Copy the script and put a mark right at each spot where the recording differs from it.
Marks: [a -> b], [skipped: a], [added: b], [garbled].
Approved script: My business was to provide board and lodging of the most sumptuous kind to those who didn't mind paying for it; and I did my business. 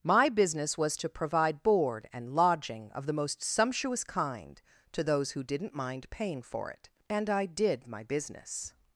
My business was to provide board and lodging of the most sumptuous kind to those who didn't mind paying for it; and I did my business.